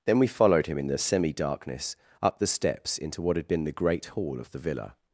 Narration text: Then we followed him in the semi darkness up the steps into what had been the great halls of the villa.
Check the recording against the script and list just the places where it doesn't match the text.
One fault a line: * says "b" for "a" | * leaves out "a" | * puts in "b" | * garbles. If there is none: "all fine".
* says "hall" for "halls"